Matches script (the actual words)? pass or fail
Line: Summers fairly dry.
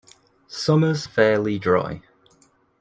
pass